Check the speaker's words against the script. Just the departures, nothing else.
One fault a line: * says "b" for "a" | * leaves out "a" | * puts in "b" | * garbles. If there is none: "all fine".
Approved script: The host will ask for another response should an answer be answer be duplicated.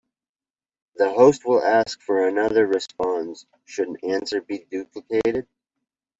* leaves out "answer be"